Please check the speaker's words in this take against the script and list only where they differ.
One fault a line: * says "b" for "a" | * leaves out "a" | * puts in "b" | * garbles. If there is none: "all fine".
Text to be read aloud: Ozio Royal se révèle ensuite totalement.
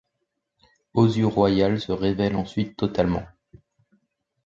all fine